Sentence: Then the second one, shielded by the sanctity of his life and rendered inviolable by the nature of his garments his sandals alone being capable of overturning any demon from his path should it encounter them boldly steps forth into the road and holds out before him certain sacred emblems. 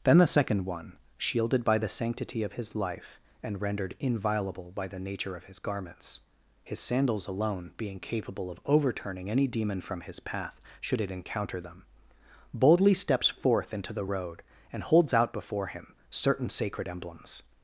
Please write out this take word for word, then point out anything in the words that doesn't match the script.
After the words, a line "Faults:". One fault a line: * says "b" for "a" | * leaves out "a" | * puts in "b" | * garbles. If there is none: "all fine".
Then the second one, shielded by the sanctity of his life and rendered inviolable by the nature of his garments his sandals alone being capable of overturning any demon from his path should it encounter them boldly steps forth into the road and holds out before him certain sacred emblems.
Faults:
all fine